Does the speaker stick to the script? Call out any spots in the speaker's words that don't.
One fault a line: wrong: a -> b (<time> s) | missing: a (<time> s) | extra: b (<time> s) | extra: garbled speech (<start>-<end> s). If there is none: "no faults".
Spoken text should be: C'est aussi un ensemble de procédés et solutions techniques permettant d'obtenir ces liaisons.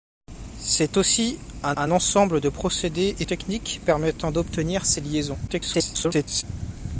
extra: un (1.8 s)
missing: solutions (3.2 s)
extra: garbled speech (5.5-6.4 s)